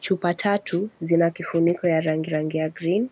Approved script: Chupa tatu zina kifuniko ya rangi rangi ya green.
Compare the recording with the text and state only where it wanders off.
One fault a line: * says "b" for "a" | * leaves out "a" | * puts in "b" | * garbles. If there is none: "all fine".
all fine